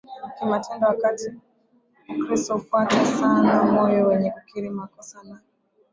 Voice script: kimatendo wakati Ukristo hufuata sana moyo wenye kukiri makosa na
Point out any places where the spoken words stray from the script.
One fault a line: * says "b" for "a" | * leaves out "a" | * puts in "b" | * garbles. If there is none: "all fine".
all fine